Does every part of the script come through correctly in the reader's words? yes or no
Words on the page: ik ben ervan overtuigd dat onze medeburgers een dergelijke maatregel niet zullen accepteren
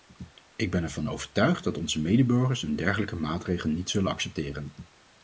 yes